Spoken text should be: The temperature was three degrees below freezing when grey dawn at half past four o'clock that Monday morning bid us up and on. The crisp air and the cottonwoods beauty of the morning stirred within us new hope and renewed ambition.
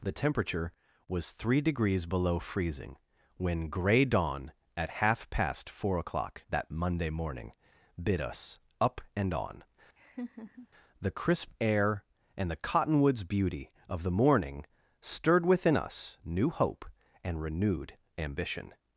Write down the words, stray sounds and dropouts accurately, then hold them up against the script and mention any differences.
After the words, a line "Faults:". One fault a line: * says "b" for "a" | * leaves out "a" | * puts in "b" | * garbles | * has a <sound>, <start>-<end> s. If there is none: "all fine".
The temperature was three degrees below freezing when grey dawn at half past four o'clock that Monday morning bid us up and on. The crisp air and the cottonwoods beauty of the morning stirred within us new hope and renewed ambition.
Faults:
* has a laugh, 10.0-10.7 s